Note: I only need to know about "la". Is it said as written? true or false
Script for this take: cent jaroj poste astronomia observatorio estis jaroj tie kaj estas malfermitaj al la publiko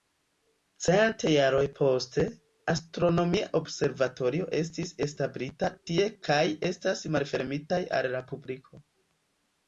true